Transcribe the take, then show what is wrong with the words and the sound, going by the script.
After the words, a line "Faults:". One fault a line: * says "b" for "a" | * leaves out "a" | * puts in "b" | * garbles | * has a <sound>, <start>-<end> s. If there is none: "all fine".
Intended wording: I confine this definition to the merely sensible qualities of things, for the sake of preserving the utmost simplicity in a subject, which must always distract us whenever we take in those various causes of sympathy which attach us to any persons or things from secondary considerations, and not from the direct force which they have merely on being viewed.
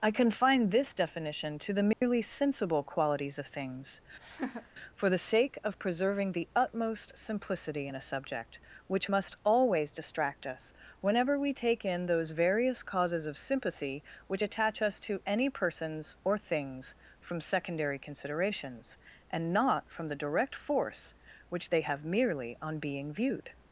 I confine this definition to the merely sensible qualities of things, for the sake of preserving the utmost simplicity in a subject, which must always distract us whenever we take in those various causes of sympathy which attach us to any persons or things from secondary considerations, and not from the direct force which they have merely on being viewed.
Faults:
* has a dropout, 1.9-2.0 s
* has a laugh, 4.2-4.7 s